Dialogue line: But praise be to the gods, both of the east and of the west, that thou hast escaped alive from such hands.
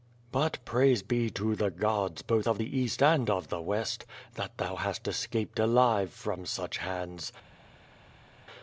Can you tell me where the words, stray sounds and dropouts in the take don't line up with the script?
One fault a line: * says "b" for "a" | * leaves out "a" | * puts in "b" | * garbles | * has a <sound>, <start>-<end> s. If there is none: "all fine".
all fine